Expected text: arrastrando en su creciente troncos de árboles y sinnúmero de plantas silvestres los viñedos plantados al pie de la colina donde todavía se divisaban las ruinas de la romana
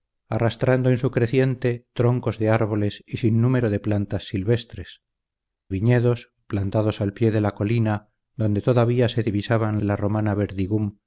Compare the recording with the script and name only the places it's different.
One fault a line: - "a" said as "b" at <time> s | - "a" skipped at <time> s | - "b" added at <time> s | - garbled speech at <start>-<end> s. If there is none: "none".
- "los" skipped at 5.0 s
- "las ruinas" skipped at 9.8 s